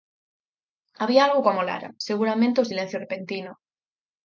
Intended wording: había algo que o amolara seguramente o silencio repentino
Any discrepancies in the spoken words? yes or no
no